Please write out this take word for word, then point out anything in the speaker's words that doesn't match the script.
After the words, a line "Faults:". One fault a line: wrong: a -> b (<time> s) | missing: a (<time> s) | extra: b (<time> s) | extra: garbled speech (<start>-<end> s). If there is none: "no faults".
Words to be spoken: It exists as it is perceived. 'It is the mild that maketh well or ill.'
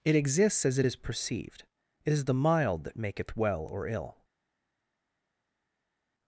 It exists as it is perceived. 'It is the mild that maketh well or ill.'
Faults:
no faults